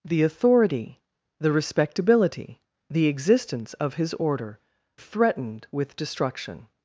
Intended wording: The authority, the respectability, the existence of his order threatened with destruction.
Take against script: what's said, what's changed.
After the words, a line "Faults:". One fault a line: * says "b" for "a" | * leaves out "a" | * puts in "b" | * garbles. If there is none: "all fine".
The authority, the respectability, the existence of his order threatened with destruction.
Faults:
all fine